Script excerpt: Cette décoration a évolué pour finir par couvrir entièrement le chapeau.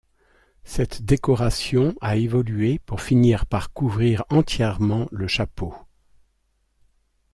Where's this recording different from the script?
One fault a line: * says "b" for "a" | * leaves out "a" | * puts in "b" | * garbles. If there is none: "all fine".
all fine